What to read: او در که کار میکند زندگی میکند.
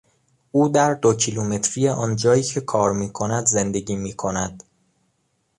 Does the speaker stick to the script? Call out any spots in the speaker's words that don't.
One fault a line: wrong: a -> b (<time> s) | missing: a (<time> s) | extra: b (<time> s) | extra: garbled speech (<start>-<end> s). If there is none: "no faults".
extra: دو کیلومتری آنجایی (0.9 s)